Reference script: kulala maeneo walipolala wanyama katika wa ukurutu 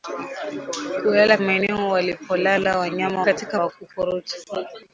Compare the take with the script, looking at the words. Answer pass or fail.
pass